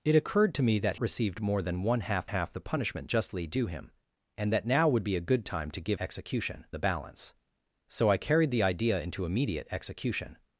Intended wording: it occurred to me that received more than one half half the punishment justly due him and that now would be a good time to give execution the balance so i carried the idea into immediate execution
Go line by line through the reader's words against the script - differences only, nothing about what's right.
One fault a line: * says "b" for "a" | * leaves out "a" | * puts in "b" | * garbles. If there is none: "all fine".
all fine